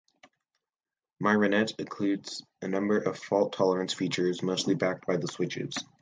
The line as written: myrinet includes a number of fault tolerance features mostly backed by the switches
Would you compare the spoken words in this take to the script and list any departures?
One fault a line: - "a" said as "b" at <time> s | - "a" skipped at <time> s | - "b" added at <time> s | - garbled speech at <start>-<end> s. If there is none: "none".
none